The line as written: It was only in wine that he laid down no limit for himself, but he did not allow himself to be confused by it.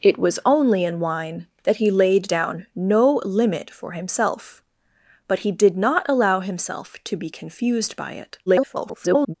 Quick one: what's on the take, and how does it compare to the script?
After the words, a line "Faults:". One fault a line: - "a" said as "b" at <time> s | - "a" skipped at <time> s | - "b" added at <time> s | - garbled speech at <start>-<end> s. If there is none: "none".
It was only in wine that he laid down no limit for himself, but he did not allow himself to be confused by it. [garbled]
Faults:
- garbled speech at 8.5-9.3 s